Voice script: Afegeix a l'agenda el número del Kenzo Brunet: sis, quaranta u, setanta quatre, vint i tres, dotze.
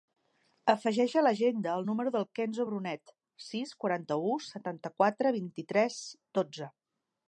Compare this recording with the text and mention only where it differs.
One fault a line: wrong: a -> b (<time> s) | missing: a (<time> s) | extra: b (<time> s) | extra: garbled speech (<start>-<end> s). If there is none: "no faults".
no faults